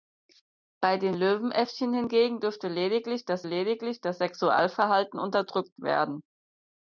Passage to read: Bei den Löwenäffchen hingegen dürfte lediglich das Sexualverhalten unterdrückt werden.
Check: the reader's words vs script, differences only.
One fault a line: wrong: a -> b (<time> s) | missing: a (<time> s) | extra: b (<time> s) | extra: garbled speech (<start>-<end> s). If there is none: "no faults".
extra: lediglich das (3.4 s)